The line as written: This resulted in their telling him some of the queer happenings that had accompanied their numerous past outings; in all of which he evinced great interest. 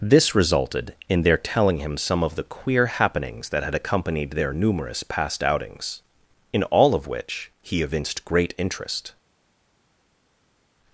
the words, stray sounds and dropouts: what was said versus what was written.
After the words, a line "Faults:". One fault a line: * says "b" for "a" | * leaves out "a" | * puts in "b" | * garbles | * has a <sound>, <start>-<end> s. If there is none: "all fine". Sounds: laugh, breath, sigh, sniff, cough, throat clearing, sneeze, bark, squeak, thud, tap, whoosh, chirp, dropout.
This resulted in their telling him some of the queer happenings that had accompanied their numerous past outings; in all of which he evinced great interest.
Faults:
all fine